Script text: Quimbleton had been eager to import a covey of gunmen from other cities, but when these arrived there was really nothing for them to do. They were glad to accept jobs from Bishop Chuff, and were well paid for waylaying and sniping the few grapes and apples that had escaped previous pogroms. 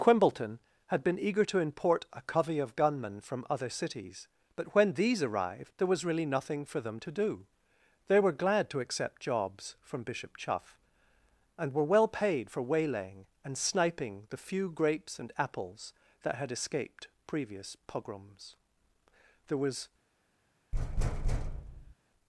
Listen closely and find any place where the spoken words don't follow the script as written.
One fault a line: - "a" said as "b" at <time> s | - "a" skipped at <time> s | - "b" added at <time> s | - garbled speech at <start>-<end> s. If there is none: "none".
- "There was" added at 19.5 s